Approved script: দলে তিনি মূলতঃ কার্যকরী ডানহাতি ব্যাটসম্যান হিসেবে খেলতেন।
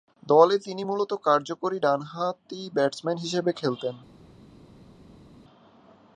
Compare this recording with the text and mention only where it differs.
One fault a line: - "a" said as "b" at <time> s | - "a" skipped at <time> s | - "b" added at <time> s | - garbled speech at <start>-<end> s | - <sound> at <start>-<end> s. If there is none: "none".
none